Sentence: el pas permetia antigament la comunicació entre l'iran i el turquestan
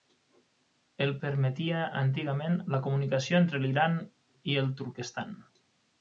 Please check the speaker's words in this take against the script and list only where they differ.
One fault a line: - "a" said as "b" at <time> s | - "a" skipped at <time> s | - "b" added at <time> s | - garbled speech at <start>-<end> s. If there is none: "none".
- "pas" skipped at 1.1 s